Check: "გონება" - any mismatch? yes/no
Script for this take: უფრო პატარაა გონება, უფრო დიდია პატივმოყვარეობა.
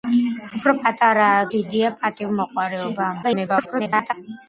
yes